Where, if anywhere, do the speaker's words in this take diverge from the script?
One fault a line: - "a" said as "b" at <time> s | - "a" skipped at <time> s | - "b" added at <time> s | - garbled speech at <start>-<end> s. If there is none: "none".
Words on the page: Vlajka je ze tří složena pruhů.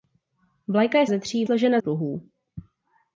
none